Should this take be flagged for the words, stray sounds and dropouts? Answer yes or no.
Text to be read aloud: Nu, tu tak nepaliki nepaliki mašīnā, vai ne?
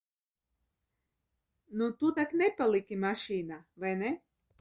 yes